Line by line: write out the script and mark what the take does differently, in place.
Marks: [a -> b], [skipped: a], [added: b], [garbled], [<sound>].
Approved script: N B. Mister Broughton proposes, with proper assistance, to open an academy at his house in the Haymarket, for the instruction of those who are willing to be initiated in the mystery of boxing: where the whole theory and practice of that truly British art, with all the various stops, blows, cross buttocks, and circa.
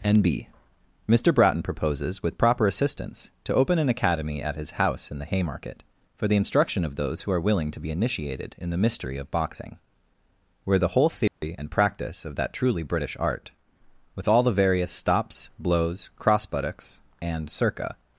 N B. Mister Broughton proposes, with proper assistance, to open an academy at his house in the Haymarket, for the instruction of those who are willing to be initiated in the mystery of boxing: where the whole theory [dropout] and practice of that truly British art, with all the various stops, blows, cross buttocks, and circa.